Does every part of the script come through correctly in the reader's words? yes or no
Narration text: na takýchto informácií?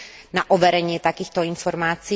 no